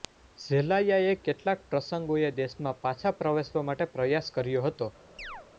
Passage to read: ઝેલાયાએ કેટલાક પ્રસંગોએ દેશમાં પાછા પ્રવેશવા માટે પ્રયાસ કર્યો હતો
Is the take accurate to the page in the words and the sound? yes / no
no